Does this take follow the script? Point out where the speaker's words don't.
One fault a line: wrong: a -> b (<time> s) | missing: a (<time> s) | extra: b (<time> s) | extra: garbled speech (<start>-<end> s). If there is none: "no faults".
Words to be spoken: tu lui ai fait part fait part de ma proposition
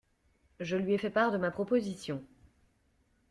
wrong: tu -> je (0.6 s)
missing: fait part (1.3 s)